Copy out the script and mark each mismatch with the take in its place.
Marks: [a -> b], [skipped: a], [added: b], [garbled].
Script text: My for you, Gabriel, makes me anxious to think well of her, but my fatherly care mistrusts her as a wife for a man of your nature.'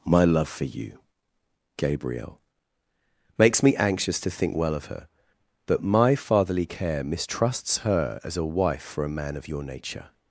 My [added: love] for you, Gabriel, makes me anxious to think well of her, but my fatherly care mistrusts her as a wife for a man of your nature.'